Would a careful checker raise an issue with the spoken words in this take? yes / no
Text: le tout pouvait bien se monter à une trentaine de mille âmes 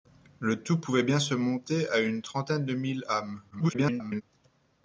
yes